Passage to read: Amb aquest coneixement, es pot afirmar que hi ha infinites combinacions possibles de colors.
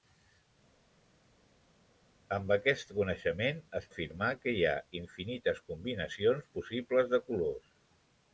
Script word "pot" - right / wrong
wrong